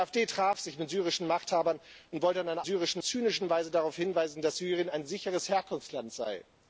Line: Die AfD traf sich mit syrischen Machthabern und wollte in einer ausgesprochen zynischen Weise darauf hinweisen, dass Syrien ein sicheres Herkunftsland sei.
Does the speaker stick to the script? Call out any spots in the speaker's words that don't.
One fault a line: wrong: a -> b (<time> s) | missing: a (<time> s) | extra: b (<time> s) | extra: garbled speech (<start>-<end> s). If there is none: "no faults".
wrong: ausgesprochen -> syrischen (2.6 s)